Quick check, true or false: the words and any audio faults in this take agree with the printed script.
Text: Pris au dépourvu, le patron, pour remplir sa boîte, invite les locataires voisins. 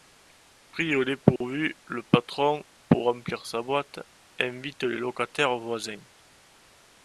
false